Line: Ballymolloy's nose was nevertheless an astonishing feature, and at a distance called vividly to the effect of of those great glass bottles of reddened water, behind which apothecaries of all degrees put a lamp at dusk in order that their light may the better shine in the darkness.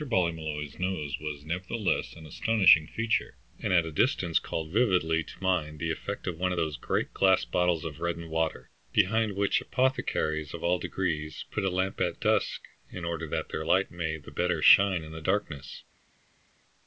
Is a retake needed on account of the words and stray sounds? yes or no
yes